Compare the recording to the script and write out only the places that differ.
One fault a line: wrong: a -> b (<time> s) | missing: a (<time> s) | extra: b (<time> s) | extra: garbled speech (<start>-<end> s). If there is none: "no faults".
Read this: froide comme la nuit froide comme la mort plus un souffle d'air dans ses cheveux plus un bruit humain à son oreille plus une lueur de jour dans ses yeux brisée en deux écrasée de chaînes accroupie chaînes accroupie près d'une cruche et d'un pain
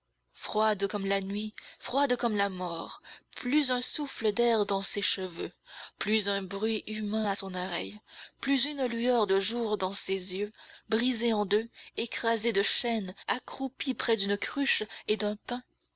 missing: chaînes accroupie (13.9 s)